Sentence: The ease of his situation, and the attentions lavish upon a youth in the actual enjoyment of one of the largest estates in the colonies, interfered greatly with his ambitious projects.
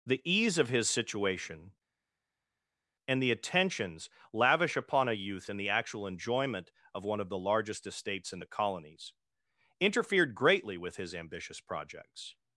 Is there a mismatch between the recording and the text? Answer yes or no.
no